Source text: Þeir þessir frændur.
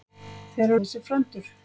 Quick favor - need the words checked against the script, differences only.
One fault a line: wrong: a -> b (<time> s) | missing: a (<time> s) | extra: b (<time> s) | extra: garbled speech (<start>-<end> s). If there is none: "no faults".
no faults